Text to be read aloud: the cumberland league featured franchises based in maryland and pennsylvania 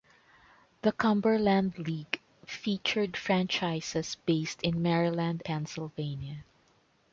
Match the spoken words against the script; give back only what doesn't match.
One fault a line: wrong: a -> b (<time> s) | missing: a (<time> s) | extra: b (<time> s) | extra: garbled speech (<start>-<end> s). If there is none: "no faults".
missing: and (5.4 s)